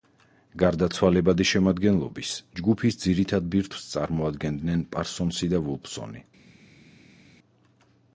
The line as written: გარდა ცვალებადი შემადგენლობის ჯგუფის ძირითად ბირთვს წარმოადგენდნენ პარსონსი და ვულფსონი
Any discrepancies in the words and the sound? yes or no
no